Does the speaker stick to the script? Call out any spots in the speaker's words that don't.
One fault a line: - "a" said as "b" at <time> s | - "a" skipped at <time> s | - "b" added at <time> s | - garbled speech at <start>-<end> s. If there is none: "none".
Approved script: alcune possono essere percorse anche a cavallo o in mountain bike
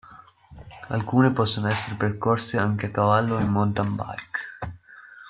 none